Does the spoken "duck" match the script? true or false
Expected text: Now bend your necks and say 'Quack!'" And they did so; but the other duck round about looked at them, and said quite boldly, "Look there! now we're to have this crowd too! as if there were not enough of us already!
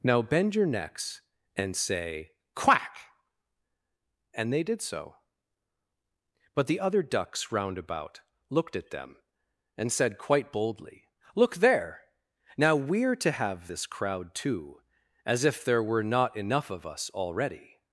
false